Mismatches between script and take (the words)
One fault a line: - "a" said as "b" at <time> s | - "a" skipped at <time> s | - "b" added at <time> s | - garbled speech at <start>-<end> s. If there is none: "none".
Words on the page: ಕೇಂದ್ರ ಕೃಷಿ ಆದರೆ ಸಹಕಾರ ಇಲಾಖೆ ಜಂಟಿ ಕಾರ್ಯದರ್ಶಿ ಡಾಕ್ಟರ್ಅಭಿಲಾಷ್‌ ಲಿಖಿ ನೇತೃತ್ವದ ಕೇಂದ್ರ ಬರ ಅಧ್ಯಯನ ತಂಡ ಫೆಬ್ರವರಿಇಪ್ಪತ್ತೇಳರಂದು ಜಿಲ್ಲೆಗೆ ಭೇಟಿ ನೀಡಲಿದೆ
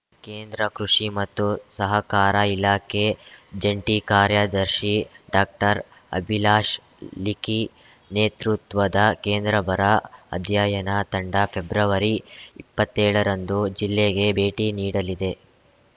- "ಆದರೆ" said as "ಮತ್ತು" at 1.1 s